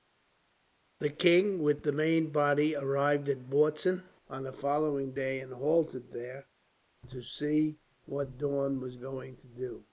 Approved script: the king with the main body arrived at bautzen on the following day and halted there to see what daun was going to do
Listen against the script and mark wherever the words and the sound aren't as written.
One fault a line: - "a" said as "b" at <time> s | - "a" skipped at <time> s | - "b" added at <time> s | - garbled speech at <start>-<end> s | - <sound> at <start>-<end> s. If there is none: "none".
none